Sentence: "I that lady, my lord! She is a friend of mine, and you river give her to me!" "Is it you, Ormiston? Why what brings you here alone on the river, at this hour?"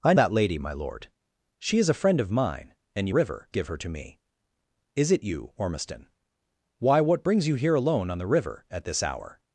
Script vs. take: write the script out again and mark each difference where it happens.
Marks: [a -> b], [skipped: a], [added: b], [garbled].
"I that lady, my lord! She is a friend of mine, and you river give her to me!" "Is it you, Ormiston? Why what brings you here alone on the river, at this hour?"